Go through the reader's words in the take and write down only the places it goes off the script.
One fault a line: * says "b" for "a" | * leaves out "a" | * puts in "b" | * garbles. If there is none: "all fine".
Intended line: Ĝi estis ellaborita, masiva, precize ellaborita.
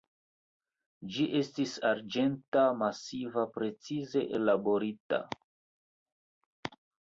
* says "arĝenta" for "ellaborita"